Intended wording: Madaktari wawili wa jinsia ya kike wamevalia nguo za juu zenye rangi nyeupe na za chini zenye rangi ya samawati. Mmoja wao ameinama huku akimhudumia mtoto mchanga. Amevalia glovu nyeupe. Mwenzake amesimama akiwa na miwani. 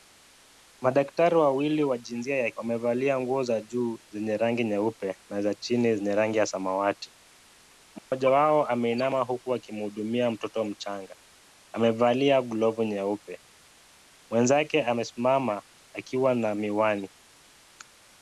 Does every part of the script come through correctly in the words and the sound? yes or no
no